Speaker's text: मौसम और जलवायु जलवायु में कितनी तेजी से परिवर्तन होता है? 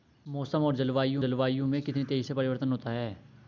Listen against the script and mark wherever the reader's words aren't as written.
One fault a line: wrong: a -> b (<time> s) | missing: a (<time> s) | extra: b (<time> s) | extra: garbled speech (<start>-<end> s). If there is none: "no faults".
no faults